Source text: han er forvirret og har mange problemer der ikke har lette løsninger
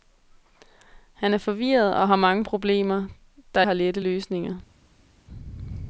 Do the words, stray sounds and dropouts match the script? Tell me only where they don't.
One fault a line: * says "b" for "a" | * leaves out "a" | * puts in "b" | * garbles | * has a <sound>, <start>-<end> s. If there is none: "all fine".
* leaves out "ikke"